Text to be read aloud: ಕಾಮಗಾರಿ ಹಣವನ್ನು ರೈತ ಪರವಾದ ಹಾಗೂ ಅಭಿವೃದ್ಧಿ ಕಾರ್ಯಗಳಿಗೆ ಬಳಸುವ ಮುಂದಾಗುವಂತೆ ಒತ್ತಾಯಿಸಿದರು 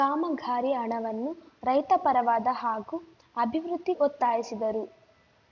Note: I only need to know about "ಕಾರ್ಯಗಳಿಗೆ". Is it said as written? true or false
false